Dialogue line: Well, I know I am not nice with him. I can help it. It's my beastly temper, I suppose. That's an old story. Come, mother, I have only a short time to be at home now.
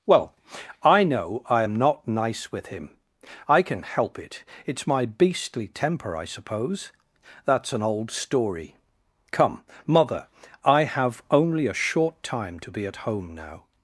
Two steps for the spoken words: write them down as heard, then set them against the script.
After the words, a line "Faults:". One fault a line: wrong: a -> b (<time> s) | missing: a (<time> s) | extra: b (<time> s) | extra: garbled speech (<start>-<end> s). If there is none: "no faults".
Well, I know I am not nice with him. I can help it. It's my beastly temper, I suppose. That's an old story. Come, mother, I have only a short time to be at home now.
Faults:
no faults